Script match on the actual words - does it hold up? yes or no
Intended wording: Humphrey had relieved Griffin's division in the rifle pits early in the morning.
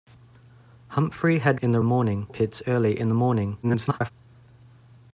no